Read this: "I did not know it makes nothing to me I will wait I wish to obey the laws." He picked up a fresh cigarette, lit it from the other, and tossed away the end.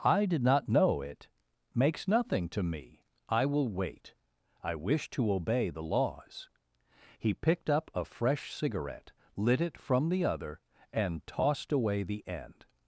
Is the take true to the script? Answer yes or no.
yes